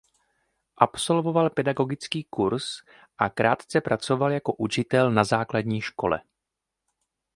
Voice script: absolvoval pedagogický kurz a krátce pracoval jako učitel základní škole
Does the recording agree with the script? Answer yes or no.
no